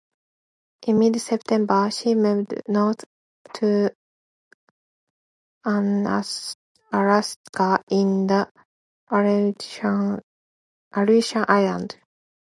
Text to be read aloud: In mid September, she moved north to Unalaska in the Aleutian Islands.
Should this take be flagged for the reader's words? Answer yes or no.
no